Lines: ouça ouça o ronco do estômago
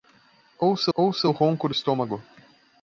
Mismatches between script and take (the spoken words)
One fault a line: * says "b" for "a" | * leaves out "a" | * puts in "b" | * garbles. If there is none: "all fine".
all fine